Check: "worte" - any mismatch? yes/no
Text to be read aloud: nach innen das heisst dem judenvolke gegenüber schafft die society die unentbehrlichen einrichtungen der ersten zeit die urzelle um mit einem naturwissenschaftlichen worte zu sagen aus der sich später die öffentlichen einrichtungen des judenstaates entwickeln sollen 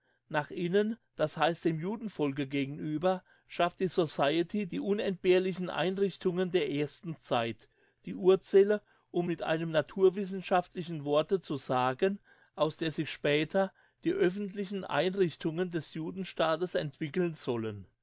no